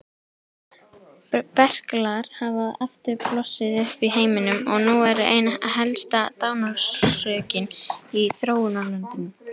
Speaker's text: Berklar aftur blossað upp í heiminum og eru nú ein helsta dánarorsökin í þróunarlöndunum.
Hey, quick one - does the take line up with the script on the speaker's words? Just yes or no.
no